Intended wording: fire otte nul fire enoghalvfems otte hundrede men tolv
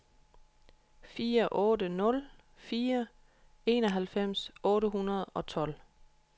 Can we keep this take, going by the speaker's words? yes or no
no